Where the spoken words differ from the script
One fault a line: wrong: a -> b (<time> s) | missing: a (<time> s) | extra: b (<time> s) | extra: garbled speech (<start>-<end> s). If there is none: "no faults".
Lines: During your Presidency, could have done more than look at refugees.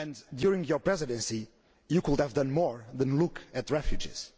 extra: you (1.9 s)